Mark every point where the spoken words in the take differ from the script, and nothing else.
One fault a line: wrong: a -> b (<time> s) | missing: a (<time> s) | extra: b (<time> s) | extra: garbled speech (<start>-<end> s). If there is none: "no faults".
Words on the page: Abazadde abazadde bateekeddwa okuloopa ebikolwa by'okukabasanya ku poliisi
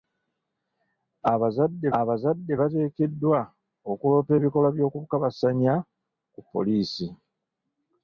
no faults